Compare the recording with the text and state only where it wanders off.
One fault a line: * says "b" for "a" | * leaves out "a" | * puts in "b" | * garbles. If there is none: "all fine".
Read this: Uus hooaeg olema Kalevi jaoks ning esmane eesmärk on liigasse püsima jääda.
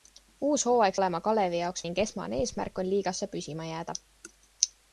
all fine